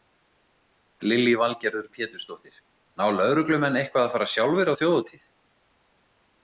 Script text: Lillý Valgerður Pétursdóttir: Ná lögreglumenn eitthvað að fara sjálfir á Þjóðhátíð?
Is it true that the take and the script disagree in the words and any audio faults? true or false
false